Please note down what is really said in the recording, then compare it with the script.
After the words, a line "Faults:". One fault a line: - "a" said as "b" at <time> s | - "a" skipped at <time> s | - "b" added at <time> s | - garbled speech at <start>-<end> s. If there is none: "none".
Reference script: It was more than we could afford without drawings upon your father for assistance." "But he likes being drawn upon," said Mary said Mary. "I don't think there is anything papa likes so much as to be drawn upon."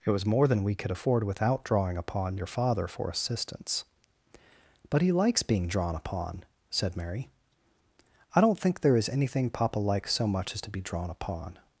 It was more than we could afford without drawing upon your father for assistance." "But he likes being drawn upon," said Mary. "I don't think there is anything papa likes so much as to be drawn upon."
Faults:
- "drawings" said as "drawing" at 1.6 s
- "said Mary" skipped at 7.3 s